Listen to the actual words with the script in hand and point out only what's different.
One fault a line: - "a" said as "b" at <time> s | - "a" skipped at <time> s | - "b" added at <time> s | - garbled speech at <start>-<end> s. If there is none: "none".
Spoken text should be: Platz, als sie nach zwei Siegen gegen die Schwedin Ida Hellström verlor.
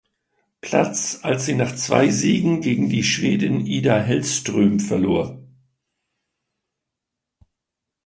none